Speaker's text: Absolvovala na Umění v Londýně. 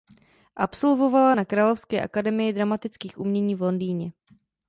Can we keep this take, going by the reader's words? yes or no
no